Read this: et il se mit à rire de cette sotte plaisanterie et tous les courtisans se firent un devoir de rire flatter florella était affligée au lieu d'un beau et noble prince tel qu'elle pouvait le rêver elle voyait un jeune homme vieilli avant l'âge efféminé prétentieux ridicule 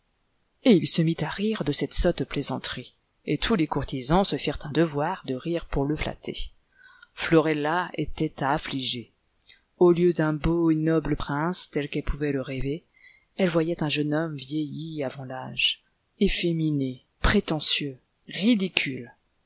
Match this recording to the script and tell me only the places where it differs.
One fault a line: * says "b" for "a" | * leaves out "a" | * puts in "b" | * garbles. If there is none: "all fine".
* puts in "pour le"